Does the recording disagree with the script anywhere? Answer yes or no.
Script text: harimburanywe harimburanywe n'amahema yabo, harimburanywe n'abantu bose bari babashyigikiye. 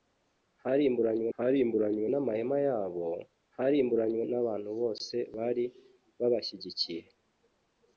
no